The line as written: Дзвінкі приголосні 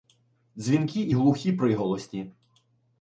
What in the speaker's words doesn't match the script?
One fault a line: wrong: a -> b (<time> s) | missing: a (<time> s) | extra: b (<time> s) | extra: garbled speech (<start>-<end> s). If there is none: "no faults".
extra: і глухі (1.0 s)